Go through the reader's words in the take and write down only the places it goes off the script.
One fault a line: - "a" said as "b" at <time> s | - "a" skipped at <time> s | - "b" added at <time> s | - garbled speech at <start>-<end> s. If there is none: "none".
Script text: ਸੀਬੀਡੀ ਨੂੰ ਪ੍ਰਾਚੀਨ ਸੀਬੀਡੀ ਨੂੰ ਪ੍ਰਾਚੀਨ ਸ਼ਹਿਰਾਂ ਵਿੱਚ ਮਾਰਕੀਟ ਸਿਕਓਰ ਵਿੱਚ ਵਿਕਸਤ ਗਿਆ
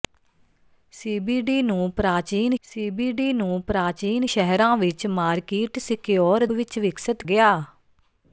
none